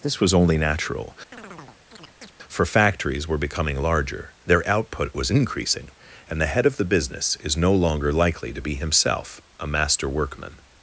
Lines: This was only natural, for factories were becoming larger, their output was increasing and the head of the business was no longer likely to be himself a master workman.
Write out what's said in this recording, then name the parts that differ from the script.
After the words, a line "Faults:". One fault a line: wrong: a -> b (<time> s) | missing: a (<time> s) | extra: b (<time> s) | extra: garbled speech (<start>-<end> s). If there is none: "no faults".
This was only natural, for factories were becoming larger, their output was increasing and the head of the business is no longer likely to be himself a master workman.
Faults:
wrong: was -> is (7.4 s)